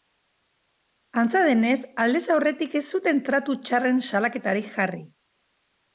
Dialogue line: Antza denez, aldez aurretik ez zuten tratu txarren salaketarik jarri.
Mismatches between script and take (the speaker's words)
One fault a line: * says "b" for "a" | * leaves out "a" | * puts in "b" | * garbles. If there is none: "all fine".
all fine